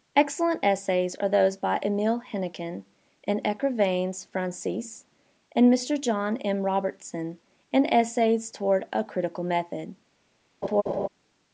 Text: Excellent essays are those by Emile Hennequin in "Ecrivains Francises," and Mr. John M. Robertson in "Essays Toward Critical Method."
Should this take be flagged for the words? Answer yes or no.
yes